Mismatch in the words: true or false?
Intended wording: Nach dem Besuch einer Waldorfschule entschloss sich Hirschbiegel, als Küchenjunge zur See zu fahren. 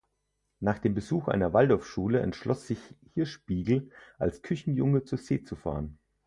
false